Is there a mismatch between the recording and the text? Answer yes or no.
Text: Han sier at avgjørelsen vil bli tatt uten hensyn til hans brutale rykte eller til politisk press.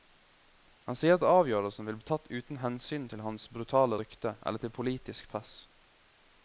no